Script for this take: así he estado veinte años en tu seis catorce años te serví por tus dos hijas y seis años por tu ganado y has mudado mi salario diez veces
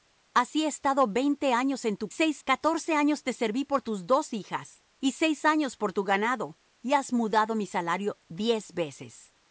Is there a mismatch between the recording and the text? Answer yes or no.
no